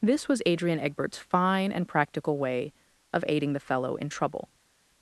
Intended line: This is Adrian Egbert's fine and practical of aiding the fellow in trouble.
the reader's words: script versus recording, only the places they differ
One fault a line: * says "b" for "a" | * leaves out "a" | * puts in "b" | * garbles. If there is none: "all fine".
* says "was" for "is"
* puts in "way"